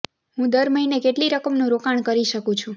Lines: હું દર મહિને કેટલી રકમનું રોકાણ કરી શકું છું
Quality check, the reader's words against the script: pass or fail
pass